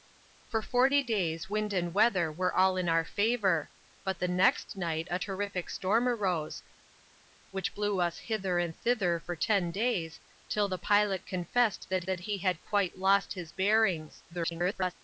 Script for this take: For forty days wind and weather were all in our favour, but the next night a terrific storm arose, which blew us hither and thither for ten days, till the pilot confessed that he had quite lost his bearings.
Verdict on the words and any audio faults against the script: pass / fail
fail